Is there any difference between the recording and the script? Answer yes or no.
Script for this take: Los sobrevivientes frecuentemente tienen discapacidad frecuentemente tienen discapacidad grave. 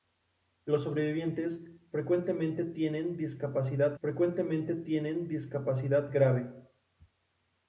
no